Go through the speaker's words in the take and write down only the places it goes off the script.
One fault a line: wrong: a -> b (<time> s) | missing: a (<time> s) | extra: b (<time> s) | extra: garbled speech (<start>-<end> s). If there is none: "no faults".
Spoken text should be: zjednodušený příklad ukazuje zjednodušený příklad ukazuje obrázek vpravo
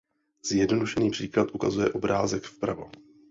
missing: zjednodušený příklad ukazuje (1.9 s)